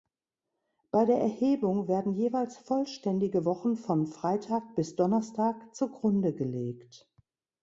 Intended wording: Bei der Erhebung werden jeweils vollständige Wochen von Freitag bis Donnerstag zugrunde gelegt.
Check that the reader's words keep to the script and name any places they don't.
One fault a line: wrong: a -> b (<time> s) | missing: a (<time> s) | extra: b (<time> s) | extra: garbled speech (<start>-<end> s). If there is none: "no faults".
no faults